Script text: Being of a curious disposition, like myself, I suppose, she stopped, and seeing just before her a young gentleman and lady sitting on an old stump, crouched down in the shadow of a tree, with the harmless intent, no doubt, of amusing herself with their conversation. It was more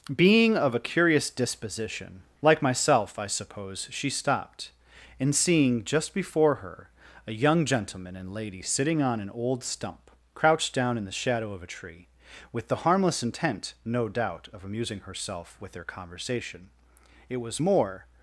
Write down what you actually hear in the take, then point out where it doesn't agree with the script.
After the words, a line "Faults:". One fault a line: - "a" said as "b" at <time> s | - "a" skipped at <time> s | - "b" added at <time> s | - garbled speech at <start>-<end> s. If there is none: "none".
Being of a curious disposition, like myself, I suppose, she stopped, and seeing just before her a young gentleman and lady sitting on an old stump, crouched down in the shadow of a tree, with the harmless intent, no doubt, of amusing herself with their conversation. It was more
Faults:
none